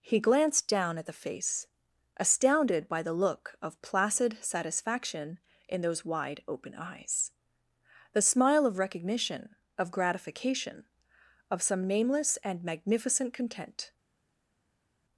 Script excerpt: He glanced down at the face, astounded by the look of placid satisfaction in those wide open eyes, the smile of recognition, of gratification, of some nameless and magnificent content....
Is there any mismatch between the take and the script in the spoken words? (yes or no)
no